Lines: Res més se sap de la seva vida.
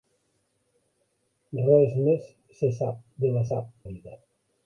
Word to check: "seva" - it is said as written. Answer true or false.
false